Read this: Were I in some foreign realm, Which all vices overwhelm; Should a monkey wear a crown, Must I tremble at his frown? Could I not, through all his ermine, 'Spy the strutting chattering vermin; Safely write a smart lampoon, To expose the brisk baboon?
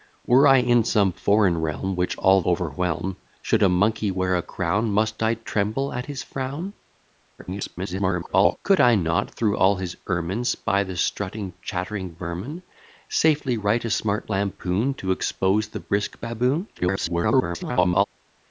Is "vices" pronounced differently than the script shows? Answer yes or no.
yes